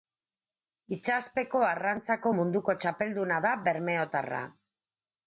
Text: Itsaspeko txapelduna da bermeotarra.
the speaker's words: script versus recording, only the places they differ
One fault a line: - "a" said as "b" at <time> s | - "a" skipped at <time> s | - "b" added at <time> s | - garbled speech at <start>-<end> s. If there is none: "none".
- "arrantzako munduko" added at 1.7 s